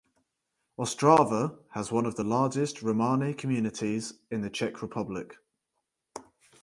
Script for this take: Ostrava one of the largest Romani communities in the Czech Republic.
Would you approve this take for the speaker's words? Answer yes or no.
no